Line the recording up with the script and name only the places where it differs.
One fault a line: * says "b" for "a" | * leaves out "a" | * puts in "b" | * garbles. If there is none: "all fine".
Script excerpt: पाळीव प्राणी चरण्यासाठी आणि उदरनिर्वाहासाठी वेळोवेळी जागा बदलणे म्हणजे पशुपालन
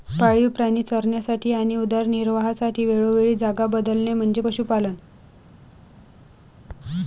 all fine